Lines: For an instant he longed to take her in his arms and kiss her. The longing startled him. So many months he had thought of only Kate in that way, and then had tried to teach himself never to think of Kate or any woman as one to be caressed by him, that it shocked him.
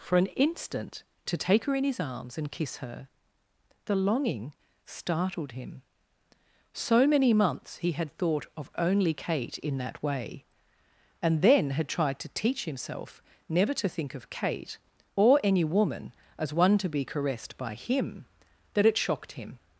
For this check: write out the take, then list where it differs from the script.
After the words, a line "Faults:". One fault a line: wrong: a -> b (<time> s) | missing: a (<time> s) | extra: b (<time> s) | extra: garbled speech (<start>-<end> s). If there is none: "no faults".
For an instant to take her in his arms and kiss her. The longing startled him. So many months he had thought of only Kate in that way, and then had tried to teach himself never to think of Kate or any woman as one to be caressed by him, that it shocked him.
Faults:
missing: he longed (1.0 s)